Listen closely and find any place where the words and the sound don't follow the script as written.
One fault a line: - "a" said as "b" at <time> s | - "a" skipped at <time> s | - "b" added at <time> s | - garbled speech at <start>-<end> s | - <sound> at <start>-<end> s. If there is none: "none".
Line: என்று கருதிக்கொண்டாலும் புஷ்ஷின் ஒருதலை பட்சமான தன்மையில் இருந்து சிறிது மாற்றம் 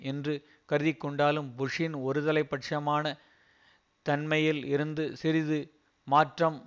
none